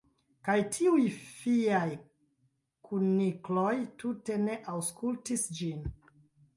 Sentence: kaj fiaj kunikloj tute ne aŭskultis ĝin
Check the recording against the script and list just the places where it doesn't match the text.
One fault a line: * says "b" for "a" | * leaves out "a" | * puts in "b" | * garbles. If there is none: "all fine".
* puts in "tiuj"